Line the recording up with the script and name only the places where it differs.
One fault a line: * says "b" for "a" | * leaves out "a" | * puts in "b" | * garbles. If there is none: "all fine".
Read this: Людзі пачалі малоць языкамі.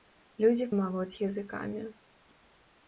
* leaves out "пачалі"